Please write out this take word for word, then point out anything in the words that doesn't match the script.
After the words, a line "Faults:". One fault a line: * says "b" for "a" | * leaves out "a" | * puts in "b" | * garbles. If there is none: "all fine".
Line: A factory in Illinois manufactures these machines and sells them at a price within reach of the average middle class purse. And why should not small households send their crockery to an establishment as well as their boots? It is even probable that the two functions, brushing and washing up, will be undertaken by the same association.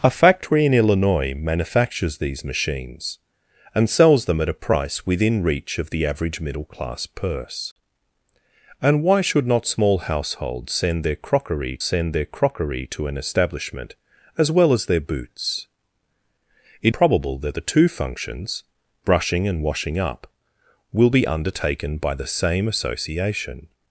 A factory in Illinois manufactures these machines and sells them at a price within reach of the average middle class purse. And why should not small households send their crockery send their crockery to an establishment as well as their boots? It probable that the two functions, brushing and washing up, will be undertaken by the same association.
Faults:
* puts in "send their crockery"
* leaves out "is even"